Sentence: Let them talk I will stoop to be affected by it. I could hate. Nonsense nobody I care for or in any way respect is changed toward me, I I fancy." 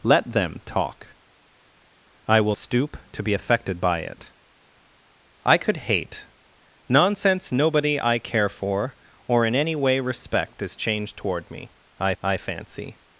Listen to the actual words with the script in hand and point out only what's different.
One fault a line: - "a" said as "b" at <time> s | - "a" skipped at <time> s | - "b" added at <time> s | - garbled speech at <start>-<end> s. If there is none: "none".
none